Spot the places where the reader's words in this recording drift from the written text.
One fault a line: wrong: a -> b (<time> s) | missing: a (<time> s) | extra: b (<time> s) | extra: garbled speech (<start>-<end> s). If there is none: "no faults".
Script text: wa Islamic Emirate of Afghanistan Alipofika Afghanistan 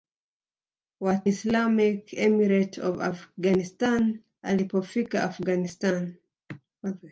no faults